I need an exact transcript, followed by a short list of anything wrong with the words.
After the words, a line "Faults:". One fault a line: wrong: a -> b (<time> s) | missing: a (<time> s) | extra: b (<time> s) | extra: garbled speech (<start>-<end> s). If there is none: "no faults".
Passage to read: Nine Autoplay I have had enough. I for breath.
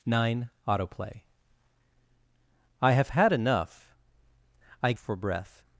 Nine Autoplay I have had enough. I for breath.
Faults:
no faults